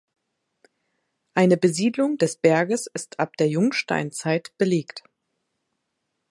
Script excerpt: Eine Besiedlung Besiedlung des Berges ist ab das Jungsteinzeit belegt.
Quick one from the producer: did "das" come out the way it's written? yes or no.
no